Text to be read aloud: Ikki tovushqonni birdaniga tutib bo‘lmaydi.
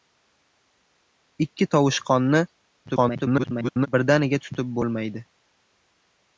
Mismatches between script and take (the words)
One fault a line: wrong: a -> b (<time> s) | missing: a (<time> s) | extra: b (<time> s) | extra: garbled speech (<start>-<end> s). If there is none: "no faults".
extra: garbled speech (2.9-3.9 s)